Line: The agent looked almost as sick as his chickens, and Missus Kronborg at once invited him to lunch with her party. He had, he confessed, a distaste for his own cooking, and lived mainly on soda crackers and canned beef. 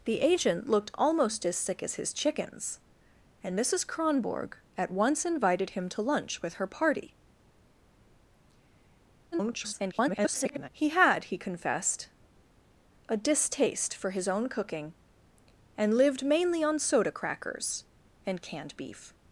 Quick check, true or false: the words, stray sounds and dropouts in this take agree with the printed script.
false